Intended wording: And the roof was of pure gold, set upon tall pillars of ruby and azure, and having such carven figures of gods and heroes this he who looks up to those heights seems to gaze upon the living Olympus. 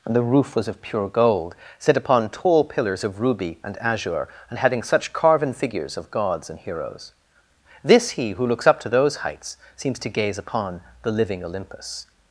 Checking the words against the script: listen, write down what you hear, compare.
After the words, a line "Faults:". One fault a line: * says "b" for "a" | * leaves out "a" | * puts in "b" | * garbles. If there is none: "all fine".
And the roof was of pure gold, set upon tall pillars of ruby and azure, and having such carven figures of gods and heroes this he who looks up to those heights seems to gaze upon the living Olympus.
Faults:
all fine